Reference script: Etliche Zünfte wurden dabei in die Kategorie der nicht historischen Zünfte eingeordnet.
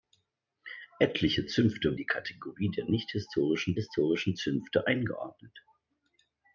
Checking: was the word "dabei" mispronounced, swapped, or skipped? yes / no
yes